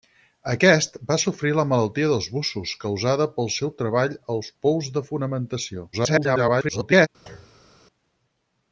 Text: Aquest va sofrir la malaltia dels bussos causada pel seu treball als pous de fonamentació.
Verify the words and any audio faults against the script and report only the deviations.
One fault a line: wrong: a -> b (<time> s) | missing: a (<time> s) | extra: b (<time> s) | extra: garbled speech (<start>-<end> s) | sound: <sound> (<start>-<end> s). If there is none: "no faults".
extra: garbled speech (5.9-7.1 s)
sound: thud (7.3-7.7 s)